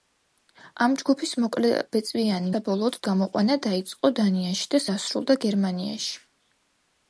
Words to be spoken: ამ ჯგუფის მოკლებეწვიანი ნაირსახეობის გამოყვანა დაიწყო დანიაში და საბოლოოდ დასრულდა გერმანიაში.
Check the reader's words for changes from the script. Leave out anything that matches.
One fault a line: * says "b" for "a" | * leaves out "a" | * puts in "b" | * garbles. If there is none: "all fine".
* says "საბოლოოდ" for "ნაირსახეობის"
* leaves out "საბოლოოდ"